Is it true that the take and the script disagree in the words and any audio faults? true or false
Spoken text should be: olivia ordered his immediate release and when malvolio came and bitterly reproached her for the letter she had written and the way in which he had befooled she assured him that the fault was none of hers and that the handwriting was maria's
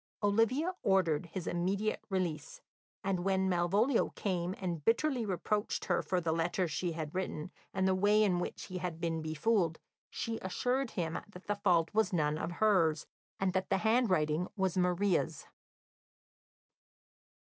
true